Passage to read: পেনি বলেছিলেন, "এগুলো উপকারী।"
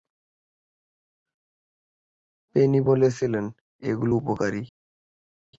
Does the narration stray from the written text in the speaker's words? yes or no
no